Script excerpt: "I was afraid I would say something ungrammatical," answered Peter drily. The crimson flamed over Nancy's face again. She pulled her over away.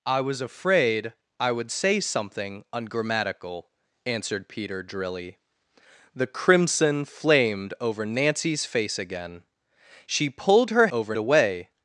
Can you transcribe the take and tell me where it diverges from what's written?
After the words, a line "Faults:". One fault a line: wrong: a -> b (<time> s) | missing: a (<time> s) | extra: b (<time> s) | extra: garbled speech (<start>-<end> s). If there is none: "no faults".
"I was afraid I would say something ungrammatical," answered Peter drily. The crimson flamed over Nancy's face again. She pulled her over away.
Faults:
no faults